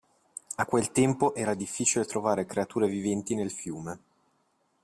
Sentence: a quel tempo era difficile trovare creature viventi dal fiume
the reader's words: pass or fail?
fail